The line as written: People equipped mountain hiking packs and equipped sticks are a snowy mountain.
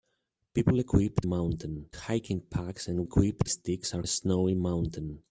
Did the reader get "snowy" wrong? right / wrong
right